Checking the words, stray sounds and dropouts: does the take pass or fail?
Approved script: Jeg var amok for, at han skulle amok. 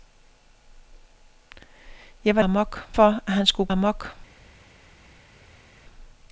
pass